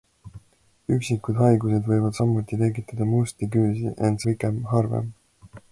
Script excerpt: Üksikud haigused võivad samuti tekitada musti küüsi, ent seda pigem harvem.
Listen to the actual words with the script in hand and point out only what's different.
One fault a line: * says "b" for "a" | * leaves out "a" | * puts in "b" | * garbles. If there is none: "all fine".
* leaves out "seda"